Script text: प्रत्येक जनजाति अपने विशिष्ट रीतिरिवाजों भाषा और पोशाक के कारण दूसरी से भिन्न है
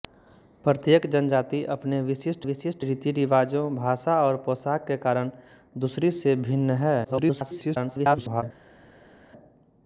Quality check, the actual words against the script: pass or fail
fail